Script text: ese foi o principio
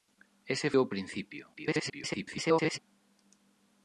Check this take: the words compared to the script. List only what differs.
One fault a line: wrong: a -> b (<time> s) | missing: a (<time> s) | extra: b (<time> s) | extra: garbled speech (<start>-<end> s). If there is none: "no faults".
missing: foi (0.7 s)
extra: garbled speech (1.5-2.8 s)